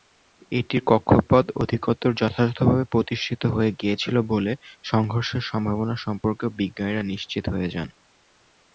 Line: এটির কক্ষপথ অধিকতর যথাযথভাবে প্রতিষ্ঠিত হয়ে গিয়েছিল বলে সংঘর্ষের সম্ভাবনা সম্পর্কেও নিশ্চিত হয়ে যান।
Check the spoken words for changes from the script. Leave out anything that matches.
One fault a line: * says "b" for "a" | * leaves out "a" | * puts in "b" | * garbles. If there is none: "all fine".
* puts in "বিজ্ঞানীরা"